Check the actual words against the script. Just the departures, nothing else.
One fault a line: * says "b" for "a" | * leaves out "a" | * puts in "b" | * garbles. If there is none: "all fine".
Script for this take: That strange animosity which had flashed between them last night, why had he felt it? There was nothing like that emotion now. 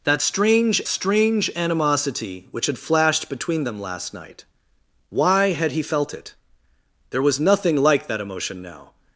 * puts in "strange"